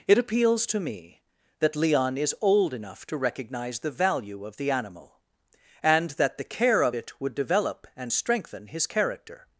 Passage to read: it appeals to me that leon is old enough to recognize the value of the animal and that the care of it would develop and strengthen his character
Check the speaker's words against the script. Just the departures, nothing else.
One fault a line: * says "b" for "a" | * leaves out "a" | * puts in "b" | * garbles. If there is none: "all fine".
all fine